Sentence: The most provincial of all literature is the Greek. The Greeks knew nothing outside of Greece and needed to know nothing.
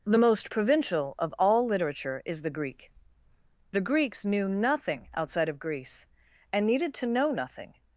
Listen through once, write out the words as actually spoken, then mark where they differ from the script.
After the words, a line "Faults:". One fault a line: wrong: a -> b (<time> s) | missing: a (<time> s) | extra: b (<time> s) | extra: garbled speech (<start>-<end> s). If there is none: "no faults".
The most provincial of all literature is the Greek. The Greeks knew nothing outside of Greece and needed to know nothing.
Faults:
no faults